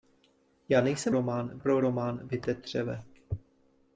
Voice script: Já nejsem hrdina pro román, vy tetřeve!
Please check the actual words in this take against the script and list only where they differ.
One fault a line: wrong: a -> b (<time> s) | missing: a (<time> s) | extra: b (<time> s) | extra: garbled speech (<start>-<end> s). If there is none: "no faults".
wrong: hrdina -> román (1.1 s)